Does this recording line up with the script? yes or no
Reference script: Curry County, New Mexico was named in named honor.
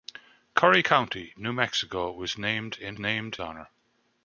yes